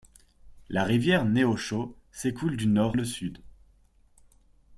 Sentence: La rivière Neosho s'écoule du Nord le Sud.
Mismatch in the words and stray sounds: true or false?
false